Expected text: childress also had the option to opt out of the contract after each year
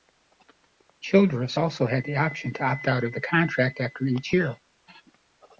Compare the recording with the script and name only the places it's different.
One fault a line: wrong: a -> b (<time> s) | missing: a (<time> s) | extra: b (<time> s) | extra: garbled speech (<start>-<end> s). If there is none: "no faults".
no faults